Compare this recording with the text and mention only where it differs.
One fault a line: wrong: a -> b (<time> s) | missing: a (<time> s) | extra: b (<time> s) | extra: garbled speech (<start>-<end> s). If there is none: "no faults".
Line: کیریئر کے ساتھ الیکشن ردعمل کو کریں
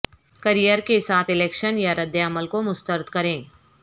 extra: یا (1.8 s)
extra: مسترد (2.6 s)